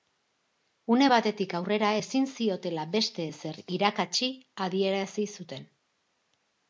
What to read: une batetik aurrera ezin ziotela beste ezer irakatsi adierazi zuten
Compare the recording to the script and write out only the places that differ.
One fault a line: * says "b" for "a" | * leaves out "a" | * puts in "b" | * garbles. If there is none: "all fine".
all fine